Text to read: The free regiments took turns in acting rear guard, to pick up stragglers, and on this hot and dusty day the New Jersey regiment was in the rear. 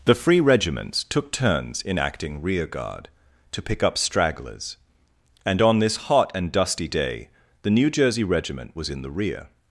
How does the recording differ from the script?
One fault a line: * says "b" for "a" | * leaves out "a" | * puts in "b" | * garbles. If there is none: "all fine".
all fine